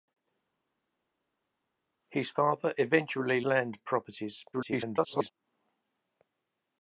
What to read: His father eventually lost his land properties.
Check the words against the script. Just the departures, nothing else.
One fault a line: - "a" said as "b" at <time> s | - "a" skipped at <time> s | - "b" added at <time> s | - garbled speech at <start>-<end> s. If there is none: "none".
- "lost his" skipped at 3.4 s
- garbled speech at 4.5-5.3 s